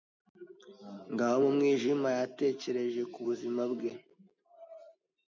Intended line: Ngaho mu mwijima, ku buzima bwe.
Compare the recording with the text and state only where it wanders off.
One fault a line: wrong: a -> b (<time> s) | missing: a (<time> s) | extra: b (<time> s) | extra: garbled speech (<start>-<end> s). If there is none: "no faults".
extra: yatekereje (2.2 s)